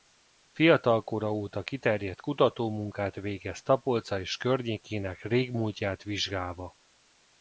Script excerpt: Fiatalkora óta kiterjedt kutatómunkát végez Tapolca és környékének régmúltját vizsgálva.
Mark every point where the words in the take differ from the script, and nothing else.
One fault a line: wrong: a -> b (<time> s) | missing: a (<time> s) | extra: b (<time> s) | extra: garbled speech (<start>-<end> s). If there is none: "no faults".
no faults